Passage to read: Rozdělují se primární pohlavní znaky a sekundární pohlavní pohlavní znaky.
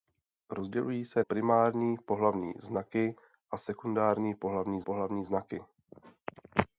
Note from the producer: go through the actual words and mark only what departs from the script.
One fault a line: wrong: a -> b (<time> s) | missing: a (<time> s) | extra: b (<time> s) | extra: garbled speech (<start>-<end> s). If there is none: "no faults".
no faults